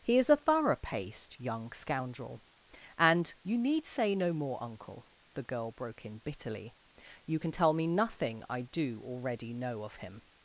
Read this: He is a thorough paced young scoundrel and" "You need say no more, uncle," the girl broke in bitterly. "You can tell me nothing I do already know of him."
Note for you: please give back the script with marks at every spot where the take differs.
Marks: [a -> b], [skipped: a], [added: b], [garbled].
He is a thorough paced young scoundrel and" "You need say no more, uncle," the girl broke in bitterly. "You can tell me nothing I do already know of him."